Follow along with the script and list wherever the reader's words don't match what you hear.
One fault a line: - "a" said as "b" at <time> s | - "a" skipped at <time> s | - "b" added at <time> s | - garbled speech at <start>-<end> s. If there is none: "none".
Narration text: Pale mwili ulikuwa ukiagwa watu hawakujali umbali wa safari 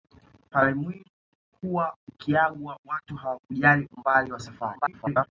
- garbled speech at 4.7-5.3 s